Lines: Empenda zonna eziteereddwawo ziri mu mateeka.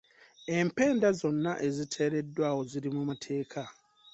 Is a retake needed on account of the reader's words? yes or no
no